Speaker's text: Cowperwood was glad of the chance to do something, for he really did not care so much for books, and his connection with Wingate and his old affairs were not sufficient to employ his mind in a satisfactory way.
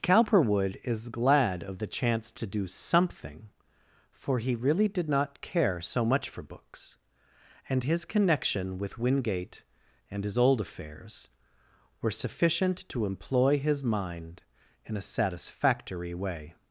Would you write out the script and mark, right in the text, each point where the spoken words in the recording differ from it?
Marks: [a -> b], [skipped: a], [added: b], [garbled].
Cowperwood [was -> is] glad of the chance to do something, for he really did not care so much for books, and his connection with Wingate and his old affairs were [skipped: not] sufficient to employ his mind in a satisfactory way.